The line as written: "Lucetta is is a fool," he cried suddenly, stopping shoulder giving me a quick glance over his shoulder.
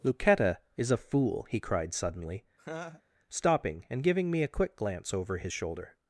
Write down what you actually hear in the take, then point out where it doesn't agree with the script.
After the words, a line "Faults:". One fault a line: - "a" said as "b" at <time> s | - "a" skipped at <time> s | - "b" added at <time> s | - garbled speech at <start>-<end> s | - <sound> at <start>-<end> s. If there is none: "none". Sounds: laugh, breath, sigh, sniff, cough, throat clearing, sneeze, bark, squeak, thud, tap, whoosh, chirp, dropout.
"Lucetta is a fool," he cried suddenly, stopping and giving me a quick glance over his shoulder.
Faults:
- "is" skipped at 0.9 s
- laugh at 2.6-3.0 s
- "shoulder" said as "and" at 3.9 s